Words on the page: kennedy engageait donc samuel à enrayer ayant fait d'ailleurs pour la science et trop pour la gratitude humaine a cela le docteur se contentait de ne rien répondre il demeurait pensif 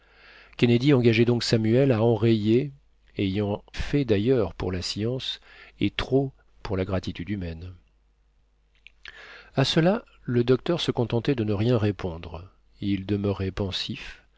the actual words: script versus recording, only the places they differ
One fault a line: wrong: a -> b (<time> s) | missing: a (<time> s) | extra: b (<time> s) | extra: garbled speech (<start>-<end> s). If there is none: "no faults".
no faults